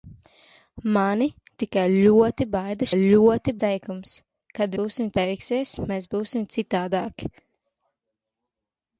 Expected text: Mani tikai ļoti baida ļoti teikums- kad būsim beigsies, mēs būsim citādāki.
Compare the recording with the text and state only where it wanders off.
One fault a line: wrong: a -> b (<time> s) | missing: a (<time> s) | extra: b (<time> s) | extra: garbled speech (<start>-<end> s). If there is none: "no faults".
no faults